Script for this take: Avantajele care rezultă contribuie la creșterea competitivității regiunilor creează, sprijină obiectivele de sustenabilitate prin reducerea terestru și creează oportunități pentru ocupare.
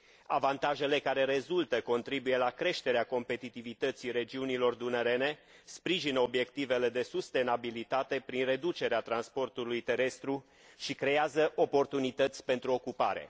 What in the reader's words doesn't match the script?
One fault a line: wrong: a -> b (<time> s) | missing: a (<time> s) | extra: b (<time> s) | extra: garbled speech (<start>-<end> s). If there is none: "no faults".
wrong: creează -> dunărene (4.7 s)
extra: transportului (9.0 s)